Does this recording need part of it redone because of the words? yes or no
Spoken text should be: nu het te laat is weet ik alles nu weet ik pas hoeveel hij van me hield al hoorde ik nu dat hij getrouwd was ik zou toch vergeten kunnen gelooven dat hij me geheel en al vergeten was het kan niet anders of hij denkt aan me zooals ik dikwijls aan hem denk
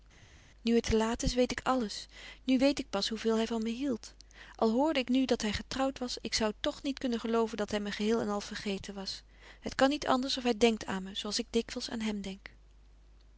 yes